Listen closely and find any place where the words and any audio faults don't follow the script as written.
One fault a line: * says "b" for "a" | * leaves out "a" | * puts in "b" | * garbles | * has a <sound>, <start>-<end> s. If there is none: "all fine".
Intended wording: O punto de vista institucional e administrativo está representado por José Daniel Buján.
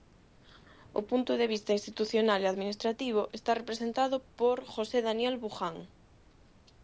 all fine